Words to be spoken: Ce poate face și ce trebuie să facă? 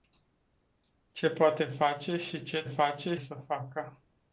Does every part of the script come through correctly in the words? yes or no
no